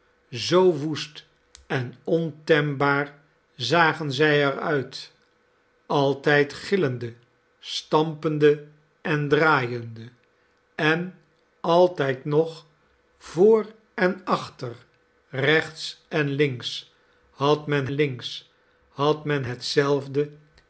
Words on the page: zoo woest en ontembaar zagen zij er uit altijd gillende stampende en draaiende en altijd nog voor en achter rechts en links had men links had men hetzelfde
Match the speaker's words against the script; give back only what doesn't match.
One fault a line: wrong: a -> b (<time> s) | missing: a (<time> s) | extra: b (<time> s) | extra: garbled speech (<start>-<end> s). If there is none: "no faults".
no faults